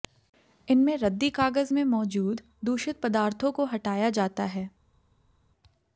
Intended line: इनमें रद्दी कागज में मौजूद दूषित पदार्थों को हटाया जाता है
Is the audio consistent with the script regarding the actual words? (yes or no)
yes